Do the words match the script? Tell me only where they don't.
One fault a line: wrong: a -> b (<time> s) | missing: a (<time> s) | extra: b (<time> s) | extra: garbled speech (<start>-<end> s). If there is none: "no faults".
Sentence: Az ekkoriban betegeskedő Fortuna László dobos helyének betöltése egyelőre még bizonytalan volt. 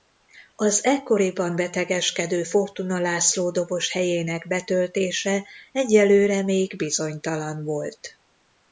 no faults